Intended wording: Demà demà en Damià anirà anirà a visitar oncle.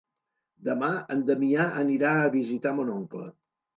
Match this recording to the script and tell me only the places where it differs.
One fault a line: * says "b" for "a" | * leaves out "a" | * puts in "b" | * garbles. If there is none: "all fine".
* leaves out "demà"
* leaves out "anirà"
* puts in "mon"